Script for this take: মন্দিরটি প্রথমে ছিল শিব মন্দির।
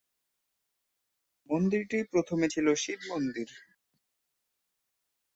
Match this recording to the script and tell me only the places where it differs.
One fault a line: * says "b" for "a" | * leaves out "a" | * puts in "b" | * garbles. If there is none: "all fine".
all fine